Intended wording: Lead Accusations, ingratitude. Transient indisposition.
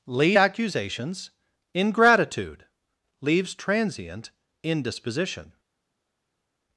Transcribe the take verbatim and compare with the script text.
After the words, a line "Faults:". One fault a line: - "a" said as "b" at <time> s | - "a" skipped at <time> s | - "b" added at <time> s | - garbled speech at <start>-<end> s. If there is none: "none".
Lead Accusations, ingratitude. Leaves Transient indisposition.
Faults:
- "Leaves" added at 3.2 s